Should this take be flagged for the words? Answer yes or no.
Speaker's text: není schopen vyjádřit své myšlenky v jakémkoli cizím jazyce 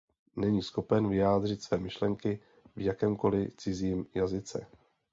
no